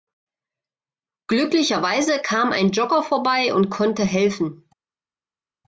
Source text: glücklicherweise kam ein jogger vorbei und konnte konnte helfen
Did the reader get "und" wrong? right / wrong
right